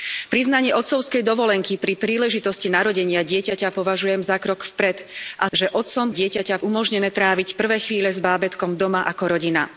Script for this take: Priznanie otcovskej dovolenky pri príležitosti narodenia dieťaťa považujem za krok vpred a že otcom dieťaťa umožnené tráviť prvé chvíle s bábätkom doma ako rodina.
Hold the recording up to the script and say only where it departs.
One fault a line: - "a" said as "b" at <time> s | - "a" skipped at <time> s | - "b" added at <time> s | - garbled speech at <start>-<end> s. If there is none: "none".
none